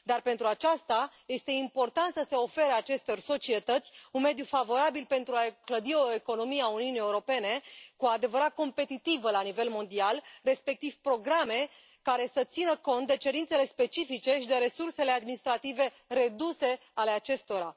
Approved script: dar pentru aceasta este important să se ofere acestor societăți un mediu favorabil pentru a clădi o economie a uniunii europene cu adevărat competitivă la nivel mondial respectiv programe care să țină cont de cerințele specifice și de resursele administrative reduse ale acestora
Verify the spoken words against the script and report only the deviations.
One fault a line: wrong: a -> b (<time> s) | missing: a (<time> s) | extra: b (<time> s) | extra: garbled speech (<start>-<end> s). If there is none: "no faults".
missing: a (5.3 s)